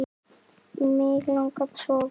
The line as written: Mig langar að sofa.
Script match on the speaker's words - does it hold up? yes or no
yes